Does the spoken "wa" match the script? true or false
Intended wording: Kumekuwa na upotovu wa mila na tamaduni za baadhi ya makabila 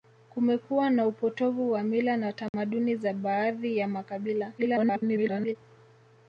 true